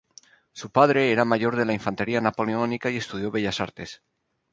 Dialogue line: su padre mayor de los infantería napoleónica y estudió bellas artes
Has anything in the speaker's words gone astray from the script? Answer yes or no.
yes